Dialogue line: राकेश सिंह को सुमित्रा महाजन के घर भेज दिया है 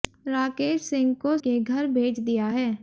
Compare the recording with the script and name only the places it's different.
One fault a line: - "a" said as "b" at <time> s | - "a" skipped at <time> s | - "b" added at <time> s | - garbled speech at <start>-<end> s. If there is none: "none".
- "सुमित्रा महाजन" skipped at 1.4 s